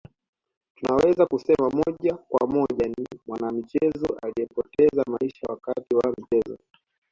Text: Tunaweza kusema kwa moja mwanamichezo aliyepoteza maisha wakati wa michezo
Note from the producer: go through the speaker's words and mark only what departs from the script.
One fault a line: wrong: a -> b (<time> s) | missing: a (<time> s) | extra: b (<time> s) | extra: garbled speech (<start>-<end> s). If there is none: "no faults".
extra: moja (1.7 s)
extra: ni (2.9 s)